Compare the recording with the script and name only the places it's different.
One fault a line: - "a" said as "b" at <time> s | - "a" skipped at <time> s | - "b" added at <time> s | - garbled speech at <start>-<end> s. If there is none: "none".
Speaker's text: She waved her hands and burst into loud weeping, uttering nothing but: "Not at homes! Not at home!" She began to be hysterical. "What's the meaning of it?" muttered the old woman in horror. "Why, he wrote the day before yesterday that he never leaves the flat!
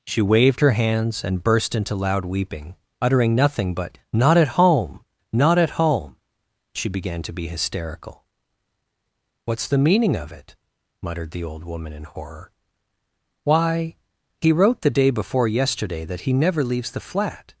- "homes" said as "home" at 4.6 s